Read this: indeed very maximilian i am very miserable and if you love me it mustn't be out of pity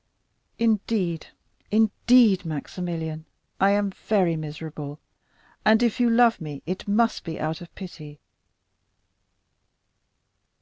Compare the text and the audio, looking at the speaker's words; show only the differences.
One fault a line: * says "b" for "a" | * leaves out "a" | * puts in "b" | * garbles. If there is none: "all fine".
* says "indeed" for "very"
* says "must" for "mustn't"